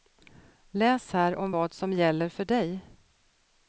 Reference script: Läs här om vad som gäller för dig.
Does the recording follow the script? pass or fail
pass